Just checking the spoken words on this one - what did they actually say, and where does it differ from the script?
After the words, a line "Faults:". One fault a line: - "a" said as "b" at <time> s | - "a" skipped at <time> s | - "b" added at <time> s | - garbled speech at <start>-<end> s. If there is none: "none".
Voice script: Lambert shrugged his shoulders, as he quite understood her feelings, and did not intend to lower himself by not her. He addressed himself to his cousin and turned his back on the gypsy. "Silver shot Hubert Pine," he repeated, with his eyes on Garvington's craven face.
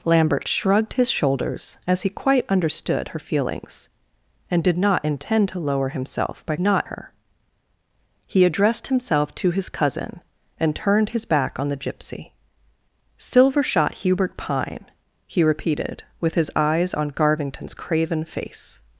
Lambert shrugged his shoulders, as he quite understood her feelings, and did not intend to lower himself by not her. He addressed himself to his cousin and turned his back on the gypsy. "Silver shot Hubert Pine," he repeated, with his eyes on Garvington's craven face.
Faults:
none